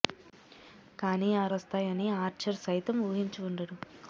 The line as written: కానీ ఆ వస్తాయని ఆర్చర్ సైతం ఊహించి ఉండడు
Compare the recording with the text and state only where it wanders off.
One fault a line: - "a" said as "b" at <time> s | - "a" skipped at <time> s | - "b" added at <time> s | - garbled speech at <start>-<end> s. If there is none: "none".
none